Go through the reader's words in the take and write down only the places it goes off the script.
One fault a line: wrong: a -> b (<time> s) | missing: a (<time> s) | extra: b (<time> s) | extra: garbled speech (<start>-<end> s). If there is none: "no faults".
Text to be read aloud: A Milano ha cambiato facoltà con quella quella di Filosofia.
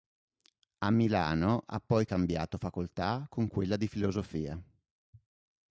extra: poi (1.8 s)
missing: quella (3.8 s)